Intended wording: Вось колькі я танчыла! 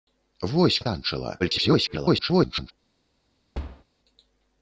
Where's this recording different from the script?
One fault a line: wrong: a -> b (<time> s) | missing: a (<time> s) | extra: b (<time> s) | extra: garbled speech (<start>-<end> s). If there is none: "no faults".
missing: колькі (0.8 s)
extra: garbled speech (1.4-2.7 s)